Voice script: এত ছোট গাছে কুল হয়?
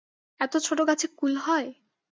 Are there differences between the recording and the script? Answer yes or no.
no